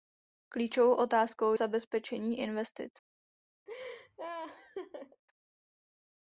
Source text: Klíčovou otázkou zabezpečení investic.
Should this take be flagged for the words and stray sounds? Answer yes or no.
yes